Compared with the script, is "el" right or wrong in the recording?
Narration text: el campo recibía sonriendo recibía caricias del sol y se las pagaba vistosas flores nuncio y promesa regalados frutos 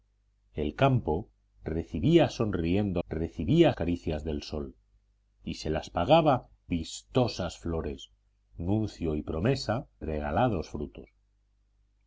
right